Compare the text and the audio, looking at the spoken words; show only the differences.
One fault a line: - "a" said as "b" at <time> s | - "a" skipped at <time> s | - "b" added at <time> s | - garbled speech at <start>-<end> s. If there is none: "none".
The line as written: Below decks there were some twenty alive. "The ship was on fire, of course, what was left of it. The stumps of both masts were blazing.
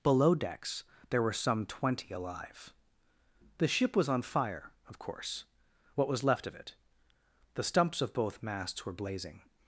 none